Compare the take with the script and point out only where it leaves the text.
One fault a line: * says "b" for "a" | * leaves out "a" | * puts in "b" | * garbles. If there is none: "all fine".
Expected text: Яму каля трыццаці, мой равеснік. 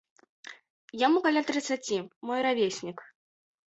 all fine